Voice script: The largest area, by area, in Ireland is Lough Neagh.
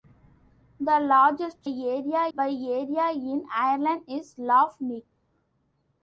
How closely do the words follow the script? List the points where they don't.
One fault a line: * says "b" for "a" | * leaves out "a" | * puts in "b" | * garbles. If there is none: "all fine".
all fine